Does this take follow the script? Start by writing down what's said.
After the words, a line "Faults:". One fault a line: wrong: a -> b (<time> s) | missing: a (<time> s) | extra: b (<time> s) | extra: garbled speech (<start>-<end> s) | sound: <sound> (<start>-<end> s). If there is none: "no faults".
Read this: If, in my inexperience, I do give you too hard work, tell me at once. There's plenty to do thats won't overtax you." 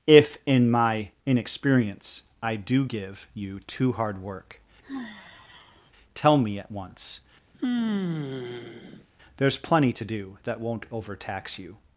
If, in my inexperience, I do give you too hard work, tell me at once. There's plenty to do that won't overtax you."
Faults:
sound: sigh (4.8-5.9 s)
sound: sigh (7.5-9.1 s)
wrong: thats -> that (10.5 s)